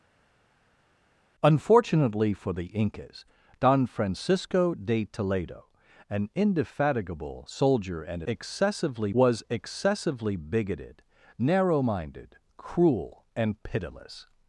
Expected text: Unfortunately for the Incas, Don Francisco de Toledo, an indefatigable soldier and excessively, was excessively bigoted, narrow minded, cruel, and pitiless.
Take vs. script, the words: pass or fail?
pass